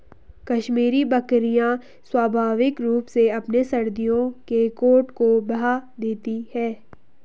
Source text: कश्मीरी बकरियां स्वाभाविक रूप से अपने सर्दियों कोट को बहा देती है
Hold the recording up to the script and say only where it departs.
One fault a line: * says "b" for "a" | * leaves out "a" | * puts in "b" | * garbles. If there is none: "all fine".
* puts in "के"